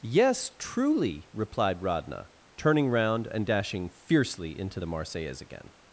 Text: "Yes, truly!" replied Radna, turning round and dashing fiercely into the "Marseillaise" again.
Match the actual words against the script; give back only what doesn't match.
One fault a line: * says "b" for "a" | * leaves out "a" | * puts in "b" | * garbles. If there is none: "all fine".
all fine